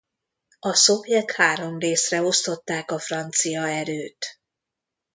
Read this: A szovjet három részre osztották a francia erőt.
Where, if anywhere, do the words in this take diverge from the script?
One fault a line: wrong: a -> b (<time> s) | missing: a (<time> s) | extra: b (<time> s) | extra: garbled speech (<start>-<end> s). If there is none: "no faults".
no faults